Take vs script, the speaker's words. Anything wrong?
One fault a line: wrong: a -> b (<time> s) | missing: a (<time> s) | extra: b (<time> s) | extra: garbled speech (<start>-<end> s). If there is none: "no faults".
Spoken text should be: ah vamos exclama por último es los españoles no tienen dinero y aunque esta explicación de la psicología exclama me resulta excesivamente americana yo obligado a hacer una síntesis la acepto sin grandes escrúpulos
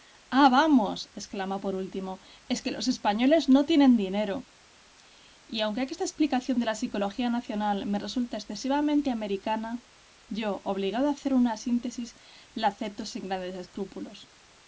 extra: que (2.6 s)
wrong: exclama -> nacional (7.3 s)